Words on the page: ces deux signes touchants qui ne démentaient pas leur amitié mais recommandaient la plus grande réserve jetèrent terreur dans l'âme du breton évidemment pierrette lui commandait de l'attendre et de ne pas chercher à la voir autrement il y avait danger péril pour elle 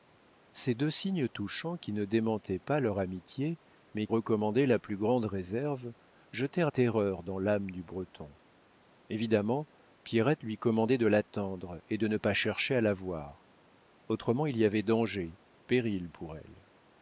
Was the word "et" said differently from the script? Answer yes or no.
no